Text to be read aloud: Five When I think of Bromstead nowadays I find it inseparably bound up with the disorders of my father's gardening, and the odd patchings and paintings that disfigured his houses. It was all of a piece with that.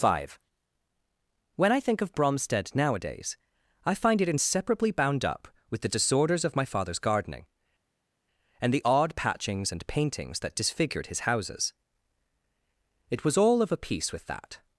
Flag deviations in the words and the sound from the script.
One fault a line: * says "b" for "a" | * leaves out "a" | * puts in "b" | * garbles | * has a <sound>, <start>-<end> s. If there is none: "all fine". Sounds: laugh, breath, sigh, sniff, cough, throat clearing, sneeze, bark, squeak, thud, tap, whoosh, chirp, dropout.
all fine